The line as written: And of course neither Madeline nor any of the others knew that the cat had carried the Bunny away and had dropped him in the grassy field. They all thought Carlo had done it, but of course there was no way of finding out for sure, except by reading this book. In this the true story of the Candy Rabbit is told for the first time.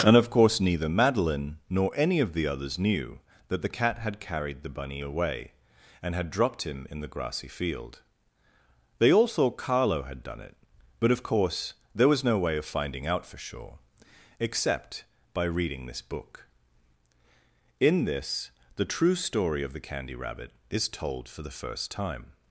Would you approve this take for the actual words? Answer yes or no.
yes